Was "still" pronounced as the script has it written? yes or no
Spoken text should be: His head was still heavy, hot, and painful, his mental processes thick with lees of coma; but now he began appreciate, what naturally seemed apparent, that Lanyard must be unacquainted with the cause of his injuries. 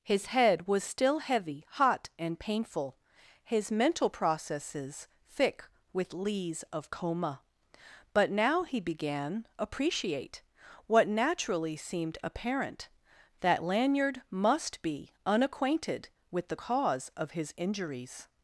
yes